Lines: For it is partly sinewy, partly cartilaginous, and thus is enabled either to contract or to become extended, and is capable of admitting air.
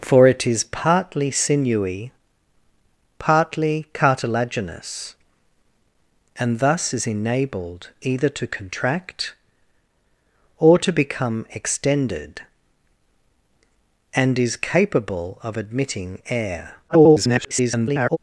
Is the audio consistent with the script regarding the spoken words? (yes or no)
no